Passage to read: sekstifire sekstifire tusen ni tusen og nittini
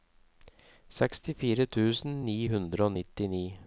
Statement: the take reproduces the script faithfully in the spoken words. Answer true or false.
false